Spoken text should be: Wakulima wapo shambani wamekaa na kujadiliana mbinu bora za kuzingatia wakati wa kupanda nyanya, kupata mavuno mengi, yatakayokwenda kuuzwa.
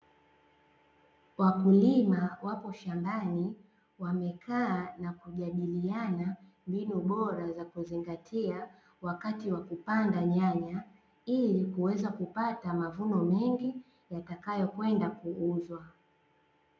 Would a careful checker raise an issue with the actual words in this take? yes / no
yes